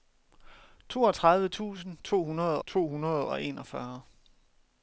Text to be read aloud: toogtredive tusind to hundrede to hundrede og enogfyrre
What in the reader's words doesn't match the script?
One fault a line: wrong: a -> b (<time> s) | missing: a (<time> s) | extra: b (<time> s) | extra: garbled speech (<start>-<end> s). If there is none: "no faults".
no faults